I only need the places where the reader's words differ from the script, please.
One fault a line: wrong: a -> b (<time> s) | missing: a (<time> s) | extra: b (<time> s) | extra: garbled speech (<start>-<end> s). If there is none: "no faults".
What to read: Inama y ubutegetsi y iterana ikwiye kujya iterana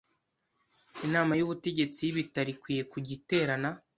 wrong: iterana -> ibitaro (2.1 s)